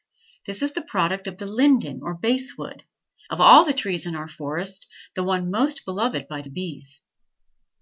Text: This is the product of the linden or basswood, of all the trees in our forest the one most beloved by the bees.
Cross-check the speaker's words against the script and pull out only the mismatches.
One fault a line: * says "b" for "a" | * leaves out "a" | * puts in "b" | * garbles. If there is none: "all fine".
all fine